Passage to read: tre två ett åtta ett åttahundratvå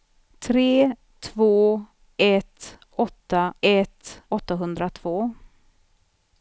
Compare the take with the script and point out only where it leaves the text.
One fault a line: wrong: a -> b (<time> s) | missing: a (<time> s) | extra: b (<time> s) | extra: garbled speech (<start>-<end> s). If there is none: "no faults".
no faults